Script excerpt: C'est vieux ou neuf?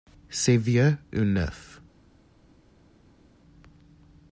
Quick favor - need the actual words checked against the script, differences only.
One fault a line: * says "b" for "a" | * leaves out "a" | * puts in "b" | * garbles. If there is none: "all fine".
all fine